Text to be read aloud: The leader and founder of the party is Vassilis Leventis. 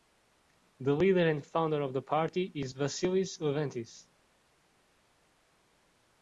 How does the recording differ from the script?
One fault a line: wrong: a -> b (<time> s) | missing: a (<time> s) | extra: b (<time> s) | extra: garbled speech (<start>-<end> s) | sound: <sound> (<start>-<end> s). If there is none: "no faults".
no faults